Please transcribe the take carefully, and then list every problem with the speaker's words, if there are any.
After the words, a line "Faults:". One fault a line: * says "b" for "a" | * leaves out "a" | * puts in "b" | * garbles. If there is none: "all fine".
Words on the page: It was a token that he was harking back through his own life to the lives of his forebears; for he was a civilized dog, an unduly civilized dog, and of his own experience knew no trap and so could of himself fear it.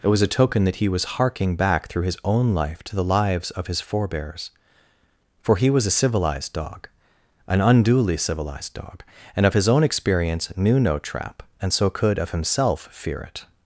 It was a token that he was harking back through his own life to the lives of his forebears; for he was a civilized dog, an unduly civilized dog, and of his own experience knew no trap and so could of himself fear it.
Faults:
all fine